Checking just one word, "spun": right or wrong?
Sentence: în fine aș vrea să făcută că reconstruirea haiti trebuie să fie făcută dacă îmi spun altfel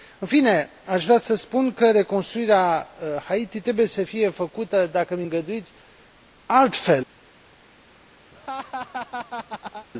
wrong